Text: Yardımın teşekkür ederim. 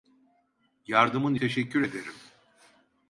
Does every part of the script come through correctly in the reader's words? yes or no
yes